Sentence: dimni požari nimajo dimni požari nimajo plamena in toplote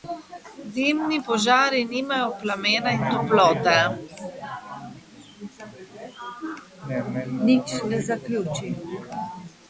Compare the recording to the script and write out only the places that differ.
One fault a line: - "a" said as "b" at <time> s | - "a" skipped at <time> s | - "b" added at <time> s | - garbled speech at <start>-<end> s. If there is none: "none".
- "dimni požari nimajo" skipped at 2.3 s